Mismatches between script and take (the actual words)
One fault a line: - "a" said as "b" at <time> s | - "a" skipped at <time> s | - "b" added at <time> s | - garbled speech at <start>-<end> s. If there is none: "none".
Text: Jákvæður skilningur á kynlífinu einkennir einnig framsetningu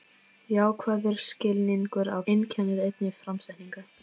- "kynlífinu" skipped at 2.2 s